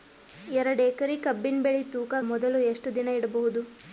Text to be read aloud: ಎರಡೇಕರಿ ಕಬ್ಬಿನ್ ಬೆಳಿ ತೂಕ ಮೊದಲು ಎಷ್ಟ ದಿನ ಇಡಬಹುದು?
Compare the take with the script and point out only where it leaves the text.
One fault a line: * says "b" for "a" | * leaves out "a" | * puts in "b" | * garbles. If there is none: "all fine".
all fine